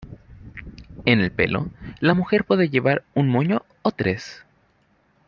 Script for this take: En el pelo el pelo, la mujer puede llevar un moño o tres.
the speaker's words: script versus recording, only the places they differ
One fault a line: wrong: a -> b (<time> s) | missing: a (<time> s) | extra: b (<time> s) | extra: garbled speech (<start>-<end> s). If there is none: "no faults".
missing: el pelo (1.7 s)